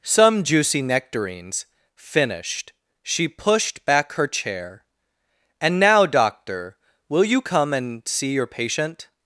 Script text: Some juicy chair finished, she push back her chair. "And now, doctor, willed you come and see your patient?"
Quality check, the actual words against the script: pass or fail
fail